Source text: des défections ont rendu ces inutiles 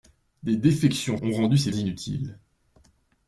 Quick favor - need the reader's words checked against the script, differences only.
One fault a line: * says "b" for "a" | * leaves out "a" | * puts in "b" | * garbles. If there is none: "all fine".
all fine